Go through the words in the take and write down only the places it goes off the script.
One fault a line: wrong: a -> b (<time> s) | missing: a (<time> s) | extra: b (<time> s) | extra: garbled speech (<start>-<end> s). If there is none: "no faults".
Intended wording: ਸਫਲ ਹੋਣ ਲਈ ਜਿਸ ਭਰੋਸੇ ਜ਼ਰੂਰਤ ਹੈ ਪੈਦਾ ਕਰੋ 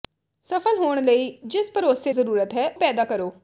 no faults